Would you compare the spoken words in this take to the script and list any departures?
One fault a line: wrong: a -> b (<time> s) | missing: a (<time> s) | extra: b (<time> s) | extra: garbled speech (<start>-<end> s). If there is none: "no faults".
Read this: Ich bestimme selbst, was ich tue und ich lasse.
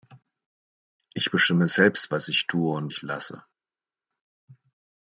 no faults